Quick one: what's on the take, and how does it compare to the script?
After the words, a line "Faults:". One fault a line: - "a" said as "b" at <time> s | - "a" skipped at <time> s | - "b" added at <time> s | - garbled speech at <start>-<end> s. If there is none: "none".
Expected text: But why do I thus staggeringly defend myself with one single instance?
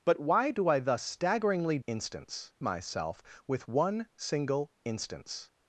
But why do I thus staggeringly instance myself with one single instance?
Faults:
- "defend" said as "instance" at 1.9 s